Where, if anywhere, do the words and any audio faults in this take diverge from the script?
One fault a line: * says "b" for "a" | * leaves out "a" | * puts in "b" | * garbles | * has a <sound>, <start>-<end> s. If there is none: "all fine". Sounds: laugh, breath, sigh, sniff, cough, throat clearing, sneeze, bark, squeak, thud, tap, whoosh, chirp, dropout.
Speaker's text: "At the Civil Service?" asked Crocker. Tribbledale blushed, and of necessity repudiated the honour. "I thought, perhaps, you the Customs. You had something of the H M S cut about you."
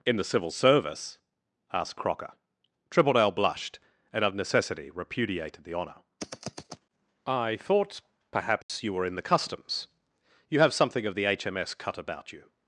* says "In" for "At"
* has a dropout, 8.6-8.7 s
* puts in "were in"
* says "have" for "had"